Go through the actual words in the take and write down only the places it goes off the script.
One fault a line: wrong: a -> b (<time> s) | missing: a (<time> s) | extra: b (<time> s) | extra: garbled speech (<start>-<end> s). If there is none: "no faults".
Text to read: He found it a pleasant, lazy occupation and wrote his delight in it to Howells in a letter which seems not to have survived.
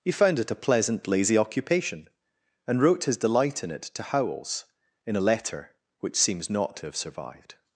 no faults